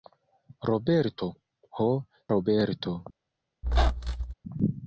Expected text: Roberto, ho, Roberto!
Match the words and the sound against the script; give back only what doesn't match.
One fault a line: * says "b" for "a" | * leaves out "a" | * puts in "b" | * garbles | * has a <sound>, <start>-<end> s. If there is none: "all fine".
* has a squeak, 3.6-4.3 s